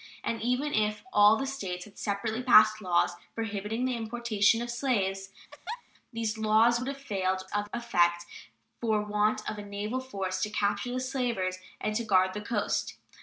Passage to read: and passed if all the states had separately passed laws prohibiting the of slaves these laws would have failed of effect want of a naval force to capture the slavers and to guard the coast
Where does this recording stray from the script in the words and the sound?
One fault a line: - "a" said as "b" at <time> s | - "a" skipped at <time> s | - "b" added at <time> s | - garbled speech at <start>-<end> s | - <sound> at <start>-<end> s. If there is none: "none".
- "passed" said as "even" at 0.4 s
- "importation" added at 4.0 s
- laugh at 5.5-5.8 s
- "for" added at 8.8 s